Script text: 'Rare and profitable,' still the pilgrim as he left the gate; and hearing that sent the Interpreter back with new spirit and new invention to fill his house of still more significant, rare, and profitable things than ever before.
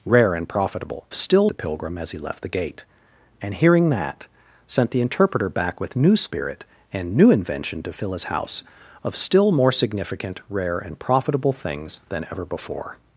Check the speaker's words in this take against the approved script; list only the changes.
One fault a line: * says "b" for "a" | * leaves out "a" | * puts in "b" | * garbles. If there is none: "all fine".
all fine